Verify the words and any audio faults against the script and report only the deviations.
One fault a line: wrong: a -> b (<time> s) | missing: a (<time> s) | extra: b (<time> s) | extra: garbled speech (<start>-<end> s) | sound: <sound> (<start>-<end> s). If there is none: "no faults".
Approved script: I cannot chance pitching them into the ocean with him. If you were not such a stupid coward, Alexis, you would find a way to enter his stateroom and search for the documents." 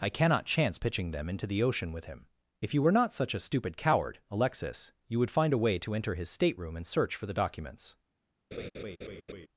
sound: laugh (8.5-9.5 s)